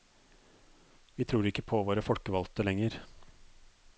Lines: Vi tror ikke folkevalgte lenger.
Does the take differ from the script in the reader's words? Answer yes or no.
yes